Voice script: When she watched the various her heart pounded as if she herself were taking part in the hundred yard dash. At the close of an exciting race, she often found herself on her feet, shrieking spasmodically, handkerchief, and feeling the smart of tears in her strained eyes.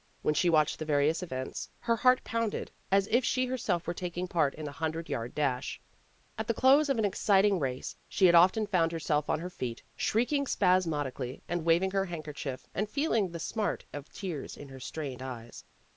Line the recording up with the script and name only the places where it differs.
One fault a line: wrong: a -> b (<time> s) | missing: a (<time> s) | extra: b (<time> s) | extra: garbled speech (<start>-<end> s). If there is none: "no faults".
extra: events (1.2 s)
extra: had (8.3 s)
extra: and waving her (11.5 s)